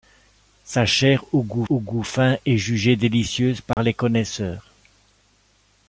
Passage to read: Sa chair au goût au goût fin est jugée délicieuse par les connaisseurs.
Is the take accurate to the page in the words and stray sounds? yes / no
no